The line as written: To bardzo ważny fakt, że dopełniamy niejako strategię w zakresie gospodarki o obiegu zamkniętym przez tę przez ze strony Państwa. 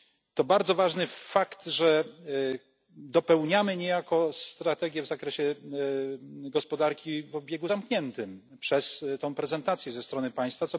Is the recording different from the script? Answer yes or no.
yes